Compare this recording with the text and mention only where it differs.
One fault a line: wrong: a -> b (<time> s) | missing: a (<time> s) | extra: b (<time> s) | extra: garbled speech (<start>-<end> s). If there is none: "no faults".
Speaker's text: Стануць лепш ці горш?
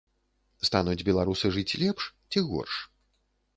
extra: беларусы жыць (1.1 s)